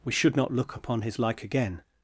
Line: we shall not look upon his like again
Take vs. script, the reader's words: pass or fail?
fail